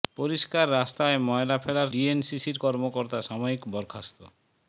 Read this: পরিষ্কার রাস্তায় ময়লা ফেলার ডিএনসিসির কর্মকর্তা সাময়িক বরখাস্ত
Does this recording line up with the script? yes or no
yes